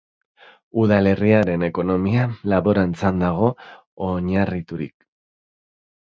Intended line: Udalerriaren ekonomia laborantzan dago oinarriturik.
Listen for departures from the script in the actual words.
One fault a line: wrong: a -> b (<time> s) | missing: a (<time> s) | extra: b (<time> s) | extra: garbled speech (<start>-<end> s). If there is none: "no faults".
no faults